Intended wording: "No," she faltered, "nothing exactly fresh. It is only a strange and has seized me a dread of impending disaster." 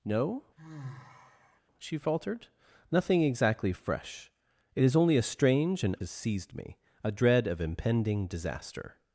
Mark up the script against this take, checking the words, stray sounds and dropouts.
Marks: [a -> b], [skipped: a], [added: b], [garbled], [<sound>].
"No," [sigh] she faltered, "nothing exactly fresh. It is only a strange and has seized me a dread of impending disaster."